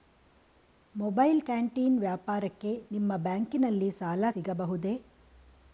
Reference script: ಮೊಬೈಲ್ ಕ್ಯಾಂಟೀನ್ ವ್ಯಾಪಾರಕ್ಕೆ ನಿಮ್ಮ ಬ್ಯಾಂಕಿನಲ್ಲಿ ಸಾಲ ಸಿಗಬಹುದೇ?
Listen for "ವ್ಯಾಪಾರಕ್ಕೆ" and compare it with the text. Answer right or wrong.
right